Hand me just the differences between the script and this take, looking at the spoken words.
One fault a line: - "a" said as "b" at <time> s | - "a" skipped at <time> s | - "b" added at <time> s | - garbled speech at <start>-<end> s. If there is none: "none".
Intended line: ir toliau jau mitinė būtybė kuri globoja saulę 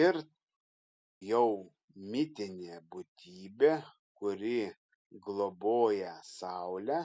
- "toliau" skipped at 0.1 s